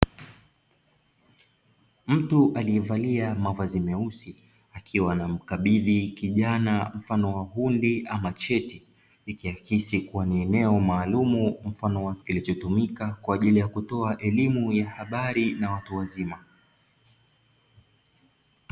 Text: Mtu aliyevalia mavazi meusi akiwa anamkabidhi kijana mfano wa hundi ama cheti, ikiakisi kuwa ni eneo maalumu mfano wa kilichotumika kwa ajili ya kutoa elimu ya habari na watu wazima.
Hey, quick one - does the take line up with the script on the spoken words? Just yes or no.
yes